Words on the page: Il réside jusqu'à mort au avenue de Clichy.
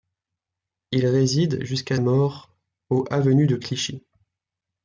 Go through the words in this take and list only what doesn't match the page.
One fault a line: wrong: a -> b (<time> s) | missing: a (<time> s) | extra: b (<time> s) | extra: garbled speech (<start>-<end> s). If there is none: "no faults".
no faults